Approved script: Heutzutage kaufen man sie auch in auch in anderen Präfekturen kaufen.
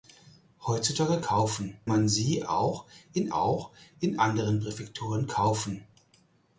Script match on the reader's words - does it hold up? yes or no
yes